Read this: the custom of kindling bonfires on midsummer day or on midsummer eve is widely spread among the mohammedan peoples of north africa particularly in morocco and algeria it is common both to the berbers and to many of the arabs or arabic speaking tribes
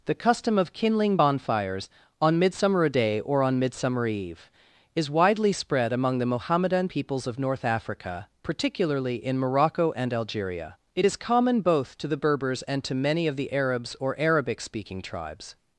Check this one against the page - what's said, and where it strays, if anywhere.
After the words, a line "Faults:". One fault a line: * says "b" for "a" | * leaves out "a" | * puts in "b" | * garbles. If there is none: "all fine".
the custom of kindling bonfires on midsummer day or on midsummer eve is widely spread among the mohammedan peoples of north africa particularly in morocco and algeria it is common both to the berbers and to many of the arabs or arabic speaking tribes
Faults:
all fine